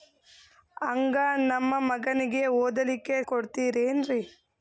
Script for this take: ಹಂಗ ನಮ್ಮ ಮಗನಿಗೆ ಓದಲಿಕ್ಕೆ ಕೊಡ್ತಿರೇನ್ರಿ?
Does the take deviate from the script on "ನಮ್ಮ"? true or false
false